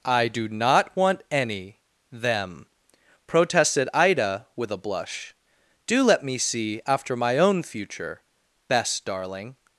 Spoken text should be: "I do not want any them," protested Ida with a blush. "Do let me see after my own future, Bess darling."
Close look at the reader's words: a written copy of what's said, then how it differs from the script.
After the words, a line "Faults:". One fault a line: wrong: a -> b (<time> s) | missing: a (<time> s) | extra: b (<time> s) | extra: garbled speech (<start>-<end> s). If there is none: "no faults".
"I do not want any them," protested Ida with a blush. "Do let me see after my own future, Bess darling."
Faults:
no faults